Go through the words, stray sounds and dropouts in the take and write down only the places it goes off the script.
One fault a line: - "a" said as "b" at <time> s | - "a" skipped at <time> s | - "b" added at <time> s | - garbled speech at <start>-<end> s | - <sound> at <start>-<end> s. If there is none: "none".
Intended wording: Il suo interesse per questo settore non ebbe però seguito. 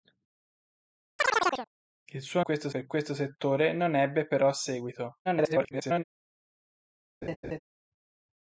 - chirp at 1.2-1.7 s
- "interesse" said as "questo" at 2.4 s
- garbled speech at 5.2-6.0 s
- laugh at 7.2-7.6 s